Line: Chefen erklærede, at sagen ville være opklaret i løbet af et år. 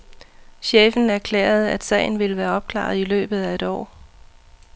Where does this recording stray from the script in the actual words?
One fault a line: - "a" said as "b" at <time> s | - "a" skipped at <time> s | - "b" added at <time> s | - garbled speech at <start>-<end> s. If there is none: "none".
none